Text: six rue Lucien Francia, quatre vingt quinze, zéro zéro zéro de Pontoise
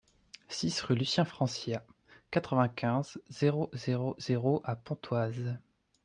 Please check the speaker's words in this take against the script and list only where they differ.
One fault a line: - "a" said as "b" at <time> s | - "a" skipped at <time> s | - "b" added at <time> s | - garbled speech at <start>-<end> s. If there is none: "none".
- "de" said as "à" at 4.6 s